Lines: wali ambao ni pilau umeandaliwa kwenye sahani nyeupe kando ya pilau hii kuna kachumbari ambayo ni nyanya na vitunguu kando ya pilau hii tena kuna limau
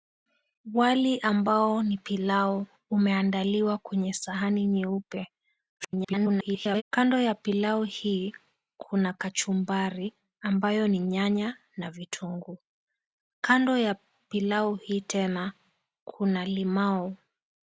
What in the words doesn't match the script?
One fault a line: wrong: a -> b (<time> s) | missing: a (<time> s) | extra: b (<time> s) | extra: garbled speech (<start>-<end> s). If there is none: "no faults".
extra: garbled speech (5.8-6.8 s)